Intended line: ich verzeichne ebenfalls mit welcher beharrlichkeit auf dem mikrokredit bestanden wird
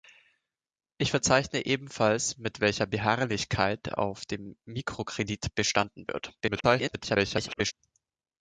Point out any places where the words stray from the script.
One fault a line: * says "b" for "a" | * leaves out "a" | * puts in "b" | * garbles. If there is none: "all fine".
* garbles